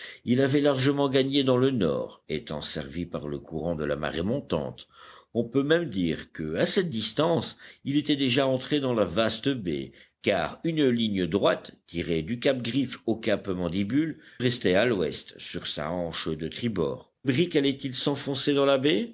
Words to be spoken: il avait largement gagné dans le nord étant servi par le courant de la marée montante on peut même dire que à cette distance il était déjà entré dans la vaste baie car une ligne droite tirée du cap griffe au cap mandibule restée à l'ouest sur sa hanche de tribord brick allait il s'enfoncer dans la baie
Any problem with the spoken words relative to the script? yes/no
no